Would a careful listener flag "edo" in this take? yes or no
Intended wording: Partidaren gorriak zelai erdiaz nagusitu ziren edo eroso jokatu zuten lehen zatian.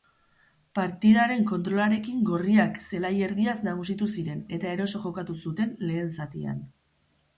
yes